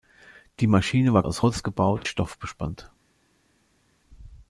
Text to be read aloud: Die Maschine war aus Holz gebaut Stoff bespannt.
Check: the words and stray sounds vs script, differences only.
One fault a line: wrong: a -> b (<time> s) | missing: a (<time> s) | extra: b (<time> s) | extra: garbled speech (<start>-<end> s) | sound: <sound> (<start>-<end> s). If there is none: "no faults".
no faults